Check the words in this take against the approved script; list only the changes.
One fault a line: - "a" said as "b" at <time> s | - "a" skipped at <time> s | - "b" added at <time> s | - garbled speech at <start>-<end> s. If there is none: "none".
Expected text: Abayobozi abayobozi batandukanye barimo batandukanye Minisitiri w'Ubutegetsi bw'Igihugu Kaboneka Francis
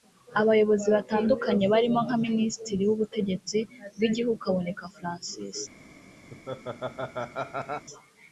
- "abayobozi" skipped at 0.9 s
- "batandukanye" said as "nka" at 2.0 s